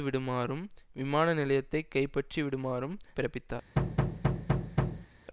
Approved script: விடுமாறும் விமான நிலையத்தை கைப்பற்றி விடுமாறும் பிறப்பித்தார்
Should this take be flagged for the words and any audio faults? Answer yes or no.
yes